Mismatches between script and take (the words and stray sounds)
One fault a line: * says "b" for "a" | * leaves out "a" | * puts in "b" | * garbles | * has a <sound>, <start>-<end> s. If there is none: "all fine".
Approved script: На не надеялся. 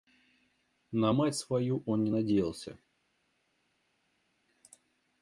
* puts in "мать свою он"